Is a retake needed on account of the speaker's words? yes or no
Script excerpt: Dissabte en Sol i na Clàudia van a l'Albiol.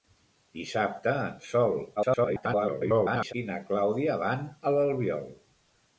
yes